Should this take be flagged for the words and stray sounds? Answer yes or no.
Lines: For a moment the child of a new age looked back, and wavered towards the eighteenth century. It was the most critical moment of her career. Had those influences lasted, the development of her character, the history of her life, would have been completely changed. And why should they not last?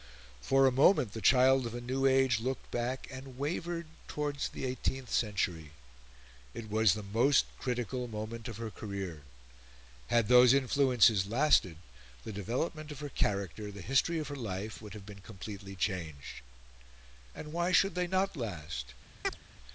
yes